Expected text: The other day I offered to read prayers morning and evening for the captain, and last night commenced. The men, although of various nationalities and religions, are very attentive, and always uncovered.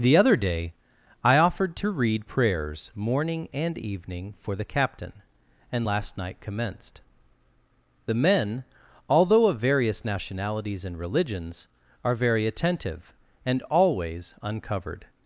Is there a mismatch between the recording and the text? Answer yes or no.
no